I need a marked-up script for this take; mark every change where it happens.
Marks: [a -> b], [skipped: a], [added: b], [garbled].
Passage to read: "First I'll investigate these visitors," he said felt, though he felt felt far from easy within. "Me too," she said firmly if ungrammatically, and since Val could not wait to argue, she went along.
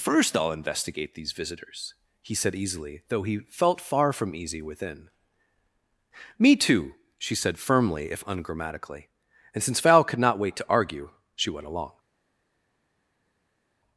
"First I'll investigate these visitors," he said [felt, -> easily] though he felt [skipped: felt] far from easy within. "Me too," she said firmly if ungrammatically, and since Val could not wait to argue, she went along.